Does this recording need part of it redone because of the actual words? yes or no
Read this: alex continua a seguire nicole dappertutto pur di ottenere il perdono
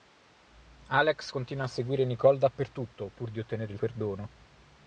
no